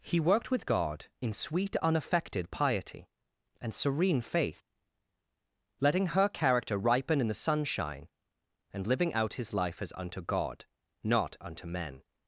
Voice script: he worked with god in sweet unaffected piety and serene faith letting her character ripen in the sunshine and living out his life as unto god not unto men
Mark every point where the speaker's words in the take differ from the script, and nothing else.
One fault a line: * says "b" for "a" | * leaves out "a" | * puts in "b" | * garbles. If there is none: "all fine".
all fine